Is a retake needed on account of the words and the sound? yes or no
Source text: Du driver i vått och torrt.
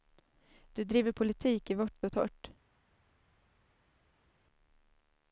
yes